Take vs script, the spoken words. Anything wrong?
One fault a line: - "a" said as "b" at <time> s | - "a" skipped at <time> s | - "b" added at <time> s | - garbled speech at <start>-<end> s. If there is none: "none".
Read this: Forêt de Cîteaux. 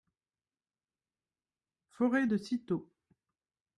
none